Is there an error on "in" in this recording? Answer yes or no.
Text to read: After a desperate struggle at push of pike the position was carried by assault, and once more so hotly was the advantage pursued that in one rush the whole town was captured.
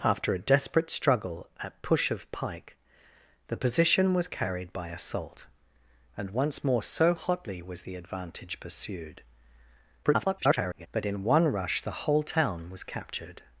no